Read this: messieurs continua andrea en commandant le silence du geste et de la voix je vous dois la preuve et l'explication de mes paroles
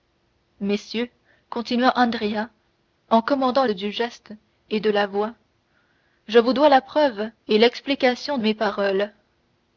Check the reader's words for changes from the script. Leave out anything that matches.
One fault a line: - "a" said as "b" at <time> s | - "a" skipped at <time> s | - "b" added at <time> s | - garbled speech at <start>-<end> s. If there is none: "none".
- "le silence" skipped at 3.7 s
- "de" skipped at 8.4 s